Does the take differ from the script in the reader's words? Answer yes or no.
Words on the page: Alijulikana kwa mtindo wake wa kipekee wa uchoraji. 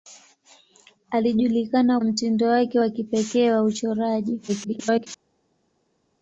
yes